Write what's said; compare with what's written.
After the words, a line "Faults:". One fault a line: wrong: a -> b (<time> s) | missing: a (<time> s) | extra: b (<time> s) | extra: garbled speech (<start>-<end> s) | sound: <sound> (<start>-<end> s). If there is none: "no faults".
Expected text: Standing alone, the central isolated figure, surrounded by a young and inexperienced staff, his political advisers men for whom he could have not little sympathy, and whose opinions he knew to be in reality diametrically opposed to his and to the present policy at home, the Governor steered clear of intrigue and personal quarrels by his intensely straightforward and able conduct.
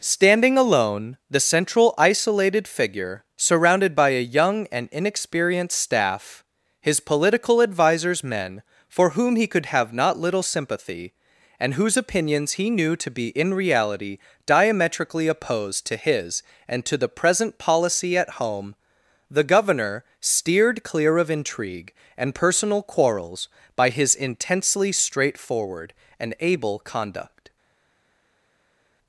Standing alone, the central isolated figure, surrounded by a young and inexperienced staff, his political advisers men for whom he could have not little sympathy, and whose opinions he knew to be in reality diametrically opposed to his and to the present policy at home, the Governor steered clear of intrigue and personal quarrels by his intensely straightforward and able conduct.
Faults:
no faults